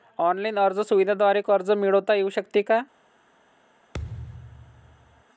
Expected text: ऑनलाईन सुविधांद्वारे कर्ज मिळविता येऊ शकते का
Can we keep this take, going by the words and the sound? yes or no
no